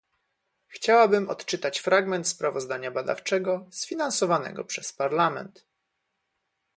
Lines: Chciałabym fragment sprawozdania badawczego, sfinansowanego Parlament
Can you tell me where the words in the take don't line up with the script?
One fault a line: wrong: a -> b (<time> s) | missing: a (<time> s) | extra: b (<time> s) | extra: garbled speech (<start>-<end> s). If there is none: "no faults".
extra: odczytać (1.3 s)
extra: przez (4.6 s)